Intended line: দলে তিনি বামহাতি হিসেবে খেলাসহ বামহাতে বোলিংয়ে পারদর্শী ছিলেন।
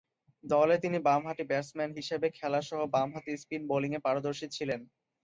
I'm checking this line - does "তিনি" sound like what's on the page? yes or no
yes